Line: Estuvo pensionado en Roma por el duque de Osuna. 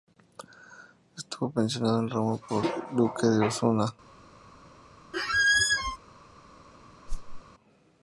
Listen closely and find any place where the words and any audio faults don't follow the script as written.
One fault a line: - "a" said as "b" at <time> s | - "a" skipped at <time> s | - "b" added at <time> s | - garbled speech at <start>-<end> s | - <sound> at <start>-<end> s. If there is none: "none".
- squeak at 5.1-6.0 s
- whoosh at 7.1-7.4 s